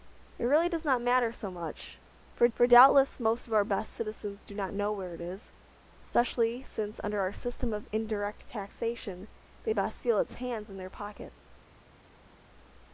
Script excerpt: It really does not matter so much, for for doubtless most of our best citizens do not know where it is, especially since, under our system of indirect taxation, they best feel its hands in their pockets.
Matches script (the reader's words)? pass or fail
pass